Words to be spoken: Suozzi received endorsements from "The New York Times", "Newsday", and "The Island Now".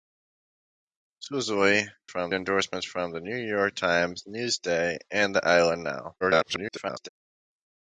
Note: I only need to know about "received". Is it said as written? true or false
false